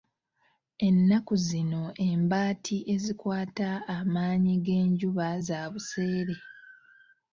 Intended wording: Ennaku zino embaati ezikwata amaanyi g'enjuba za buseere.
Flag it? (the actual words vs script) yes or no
no